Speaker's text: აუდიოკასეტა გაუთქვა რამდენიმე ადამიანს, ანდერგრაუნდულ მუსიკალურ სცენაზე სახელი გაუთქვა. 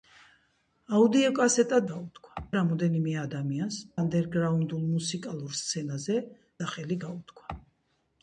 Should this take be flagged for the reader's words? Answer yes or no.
no